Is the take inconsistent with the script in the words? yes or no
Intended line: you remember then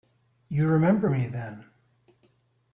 yes